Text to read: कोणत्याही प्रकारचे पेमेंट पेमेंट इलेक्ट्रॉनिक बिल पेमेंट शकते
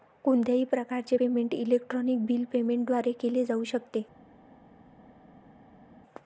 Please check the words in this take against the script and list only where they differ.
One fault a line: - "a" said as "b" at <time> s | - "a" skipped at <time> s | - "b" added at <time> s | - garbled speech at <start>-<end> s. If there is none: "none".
- "पेमेंट" skipped at 1.5 s
- "द्वारे केले जाऊ" added at 2.9 s